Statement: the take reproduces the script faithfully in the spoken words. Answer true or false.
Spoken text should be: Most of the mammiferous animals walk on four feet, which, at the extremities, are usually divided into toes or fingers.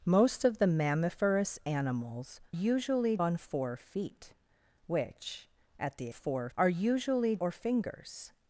false